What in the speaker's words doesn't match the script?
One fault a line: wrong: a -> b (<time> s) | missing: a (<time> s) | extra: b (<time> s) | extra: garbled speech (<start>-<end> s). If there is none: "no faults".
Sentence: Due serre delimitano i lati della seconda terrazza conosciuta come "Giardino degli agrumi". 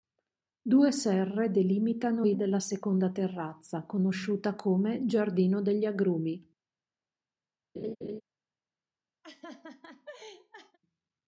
missing: lati (2.3 s)